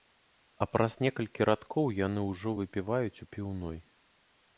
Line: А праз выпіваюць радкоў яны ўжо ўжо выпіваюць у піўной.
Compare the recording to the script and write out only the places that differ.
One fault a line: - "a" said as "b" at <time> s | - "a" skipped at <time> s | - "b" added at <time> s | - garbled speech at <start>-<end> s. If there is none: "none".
- "выпіваюць" said as "некалькі" at 1.1 s
- "ўжо" skipped at 2.5 s